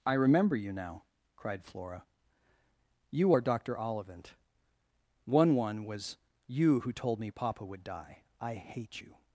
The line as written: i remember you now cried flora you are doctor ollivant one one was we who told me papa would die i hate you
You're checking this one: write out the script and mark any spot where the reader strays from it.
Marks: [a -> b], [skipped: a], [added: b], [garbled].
i remember you now cried flora you are doctor ollivant one one was [we -> you] who told me papa would die i hate you